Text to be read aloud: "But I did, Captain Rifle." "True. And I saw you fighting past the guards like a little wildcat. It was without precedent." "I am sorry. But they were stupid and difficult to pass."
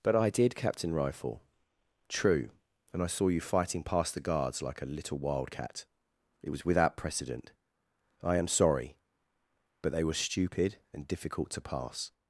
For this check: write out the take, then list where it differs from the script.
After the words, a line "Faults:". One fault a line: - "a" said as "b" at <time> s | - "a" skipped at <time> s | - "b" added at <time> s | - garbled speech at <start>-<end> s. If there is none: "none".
"But I did, Captain Rifle." "True. And I saw you fighting past the guards like a little wildcat. It was without precedent." "I am sorry. But they were stupid and difficult to pass."
Faults:
none